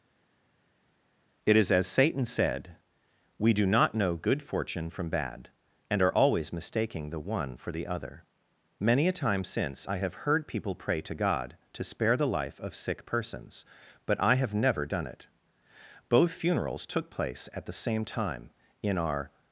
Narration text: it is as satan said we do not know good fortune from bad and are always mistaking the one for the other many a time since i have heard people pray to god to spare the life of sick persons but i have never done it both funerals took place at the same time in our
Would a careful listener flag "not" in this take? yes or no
no